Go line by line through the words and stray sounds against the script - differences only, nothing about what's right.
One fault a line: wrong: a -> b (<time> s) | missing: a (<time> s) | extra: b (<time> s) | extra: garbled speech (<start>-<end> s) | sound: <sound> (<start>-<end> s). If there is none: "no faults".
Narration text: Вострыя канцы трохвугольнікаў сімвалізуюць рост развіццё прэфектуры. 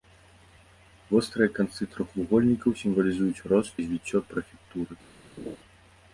sound: laugh (5.4-5.6 s)